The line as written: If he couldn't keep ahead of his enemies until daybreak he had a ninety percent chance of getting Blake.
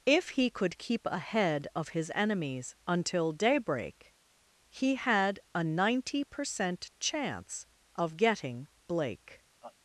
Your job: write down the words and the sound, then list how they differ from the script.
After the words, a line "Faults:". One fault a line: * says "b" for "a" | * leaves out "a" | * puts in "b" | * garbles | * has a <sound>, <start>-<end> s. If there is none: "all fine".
If he could keep ahead of his enemies until daybreak he had a ninety percent chance of getting Blake.
Faults:
* says "could" for "couldn't"
* has a laugh, 9.6-9.8 s